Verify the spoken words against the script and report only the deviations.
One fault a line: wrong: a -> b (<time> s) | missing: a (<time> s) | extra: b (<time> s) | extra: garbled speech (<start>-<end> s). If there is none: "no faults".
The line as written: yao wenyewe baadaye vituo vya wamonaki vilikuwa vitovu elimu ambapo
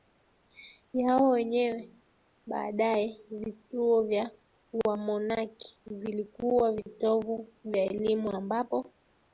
extra: vya (7.6 s)